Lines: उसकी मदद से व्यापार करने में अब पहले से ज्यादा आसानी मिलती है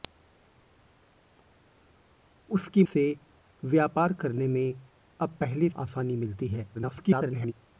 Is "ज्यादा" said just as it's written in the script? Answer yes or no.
no